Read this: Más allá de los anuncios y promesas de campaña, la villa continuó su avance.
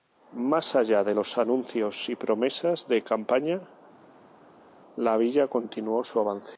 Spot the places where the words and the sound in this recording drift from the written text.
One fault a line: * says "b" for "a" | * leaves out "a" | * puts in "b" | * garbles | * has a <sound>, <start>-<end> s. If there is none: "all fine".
all fine